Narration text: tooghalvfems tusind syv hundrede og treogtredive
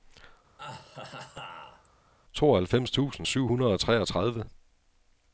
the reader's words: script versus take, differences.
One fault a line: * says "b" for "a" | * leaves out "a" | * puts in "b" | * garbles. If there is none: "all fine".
all fine